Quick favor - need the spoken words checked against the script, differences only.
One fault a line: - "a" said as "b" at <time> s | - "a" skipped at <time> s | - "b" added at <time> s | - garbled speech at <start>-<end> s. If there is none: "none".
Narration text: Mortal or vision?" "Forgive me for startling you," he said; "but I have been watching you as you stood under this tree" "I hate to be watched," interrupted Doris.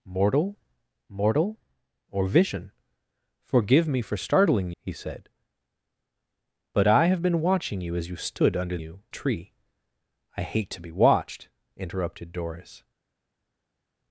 - "mortal" added at 1.1 s
- "you" skipped at 4.7 s
- "this" said as "you" at 8.8 s